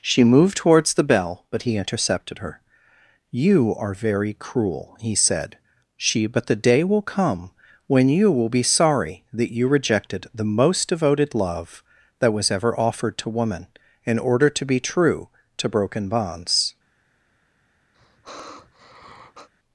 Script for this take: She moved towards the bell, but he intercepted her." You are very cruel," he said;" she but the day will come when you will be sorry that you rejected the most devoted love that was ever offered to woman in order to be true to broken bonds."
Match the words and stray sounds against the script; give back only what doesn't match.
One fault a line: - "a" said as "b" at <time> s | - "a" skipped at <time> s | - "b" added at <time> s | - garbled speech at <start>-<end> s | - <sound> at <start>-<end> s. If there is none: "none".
- sigh at 17.9-19.5 s